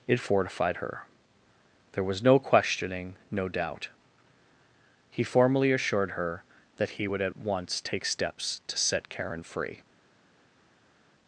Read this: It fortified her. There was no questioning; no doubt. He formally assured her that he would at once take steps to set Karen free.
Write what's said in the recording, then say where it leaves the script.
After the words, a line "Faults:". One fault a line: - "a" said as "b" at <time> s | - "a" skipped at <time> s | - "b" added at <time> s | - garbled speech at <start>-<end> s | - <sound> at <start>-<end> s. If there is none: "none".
It fortified her. There was no questioning; no doubt. He formally assured her that he would at once take steps to set Karen free.
Faults:
none